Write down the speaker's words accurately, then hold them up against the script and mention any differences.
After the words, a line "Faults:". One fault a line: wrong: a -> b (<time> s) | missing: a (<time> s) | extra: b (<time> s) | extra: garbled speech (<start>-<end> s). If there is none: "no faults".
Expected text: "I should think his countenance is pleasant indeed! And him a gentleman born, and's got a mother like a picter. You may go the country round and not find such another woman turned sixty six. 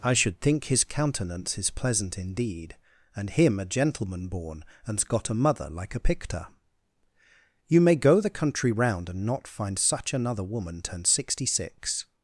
"I should think his countenance is pleasant indeed! And him a gentleman born, and's got a mother like a picter. You may go the country round and not find such another woman turned sixty six.
Faults:
no faults